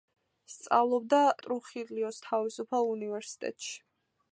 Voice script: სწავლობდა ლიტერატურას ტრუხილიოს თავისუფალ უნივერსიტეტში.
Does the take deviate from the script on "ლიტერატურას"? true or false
true